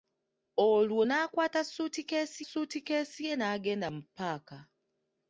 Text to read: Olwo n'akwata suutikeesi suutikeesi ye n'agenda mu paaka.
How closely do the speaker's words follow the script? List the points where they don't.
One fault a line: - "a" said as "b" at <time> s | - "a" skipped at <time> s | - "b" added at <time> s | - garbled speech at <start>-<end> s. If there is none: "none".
none